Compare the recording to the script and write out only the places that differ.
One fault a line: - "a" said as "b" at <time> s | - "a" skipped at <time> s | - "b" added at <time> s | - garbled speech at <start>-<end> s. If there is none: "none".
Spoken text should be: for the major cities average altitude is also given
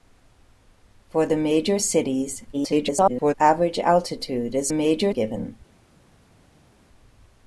- garbled speech at 2.5-3.3 s
- "also" said as "major" at 4.7 s